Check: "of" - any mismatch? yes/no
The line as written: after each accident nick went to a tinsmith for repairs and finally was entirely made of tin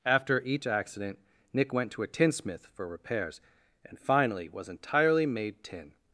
yes